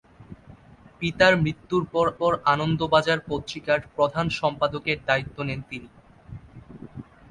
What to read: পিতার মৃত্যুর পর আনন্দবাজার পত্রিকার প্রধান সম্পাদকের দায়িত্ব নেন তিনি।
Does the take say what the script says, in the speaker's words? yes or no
no